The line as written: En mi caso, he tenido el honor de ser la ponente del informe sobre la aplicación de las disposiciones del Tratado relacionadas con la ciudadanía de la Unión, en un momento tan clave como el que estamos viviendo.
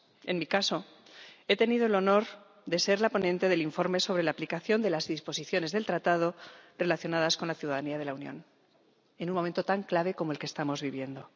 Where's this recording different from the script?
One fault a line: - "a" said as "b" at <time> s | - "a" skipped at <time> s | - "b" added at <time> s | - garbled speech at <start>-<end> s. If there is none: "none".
none